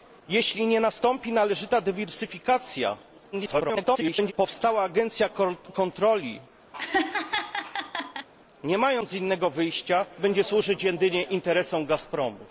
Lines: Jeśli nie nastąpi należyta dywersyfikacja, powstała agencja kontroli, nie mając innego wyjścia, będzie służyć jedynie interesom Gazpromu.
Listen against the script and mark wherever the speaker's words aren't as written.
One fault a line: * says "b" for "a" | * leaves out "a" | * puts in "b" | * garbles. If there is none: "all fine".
* garbles